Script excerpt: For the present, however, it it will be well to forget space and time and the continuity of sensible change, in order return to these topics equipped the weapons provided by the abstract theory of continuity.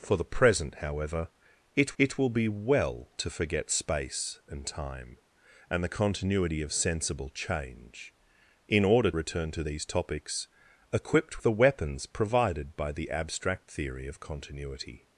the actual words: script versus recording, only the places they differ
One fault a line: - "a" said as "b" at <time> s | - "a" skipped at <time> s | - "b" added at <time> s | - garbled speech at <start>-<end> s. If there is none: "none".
none